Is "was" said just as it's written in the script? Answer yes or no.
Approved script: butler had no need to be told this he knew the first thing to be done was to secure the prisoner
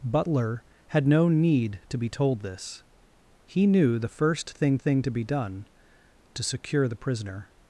no